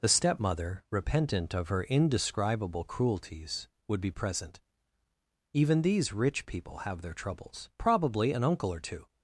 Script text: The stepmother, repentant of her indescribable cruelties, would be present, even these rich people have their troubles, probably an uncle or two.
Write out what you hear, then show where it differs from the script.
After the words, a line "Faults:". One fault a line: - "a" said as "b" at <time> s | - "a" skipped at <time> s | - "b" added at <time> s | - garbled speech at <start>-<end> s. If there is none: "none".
The stepmother, repentant of her indescribable cruelties, would be present, even these rich people have their troubles, probably an uncle or two.
Faults:
none